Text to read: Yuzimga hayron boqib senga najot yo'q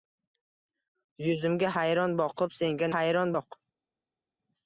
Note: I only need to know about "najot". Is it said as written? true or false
false